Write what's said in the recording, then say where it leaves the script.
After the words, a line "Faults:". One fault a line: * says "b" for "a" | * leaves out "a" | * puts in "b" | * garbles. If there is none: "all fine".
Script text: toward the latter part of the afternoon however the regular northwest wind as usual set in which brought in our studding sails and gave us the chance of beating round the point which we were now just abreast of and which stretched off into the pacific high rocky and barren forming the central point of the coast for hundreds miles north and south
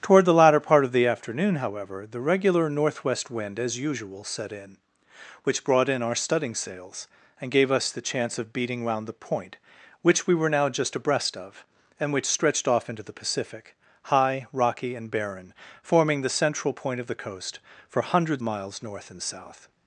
toward the latter part of the afternoon however the regular northwest wind as usual set in which brought in our studding sails and gave us the chance of beating round the point which we were now just abreast of and which stretched off into the pacific high rocky and barren forming the central point of the coast for hundreds miles north and south
Faults:
all fine